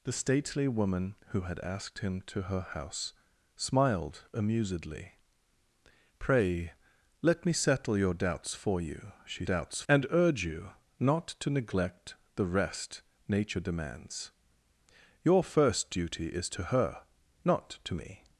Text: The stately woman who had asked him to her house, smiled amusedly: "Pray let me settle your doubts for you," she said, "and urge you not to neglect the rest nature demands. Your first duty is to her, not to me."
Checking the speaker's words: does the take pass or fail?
fail